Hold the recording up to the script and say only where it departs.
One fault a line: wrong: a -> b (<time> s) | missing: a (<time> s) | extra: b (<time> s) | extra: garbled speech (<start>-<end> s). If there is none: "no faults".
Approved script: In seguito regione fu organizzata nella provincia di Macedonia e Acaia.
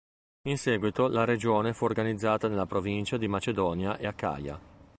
extra: la (1.1 s)